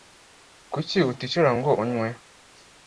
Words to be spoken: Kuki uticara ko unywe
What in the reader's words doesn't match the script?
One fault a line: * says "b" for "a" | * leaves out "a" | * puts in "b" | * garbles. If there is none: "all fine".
* says "ngo" for "ko"